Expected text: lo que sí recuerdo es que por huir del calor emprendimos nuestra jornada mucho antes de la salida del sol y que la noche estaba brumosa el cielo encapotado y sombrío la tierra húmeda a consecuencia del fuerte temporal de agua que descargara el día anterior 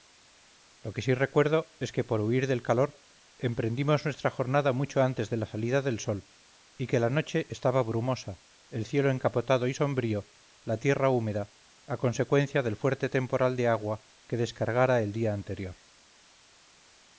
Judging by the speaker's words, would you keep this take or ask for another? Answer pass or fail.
pass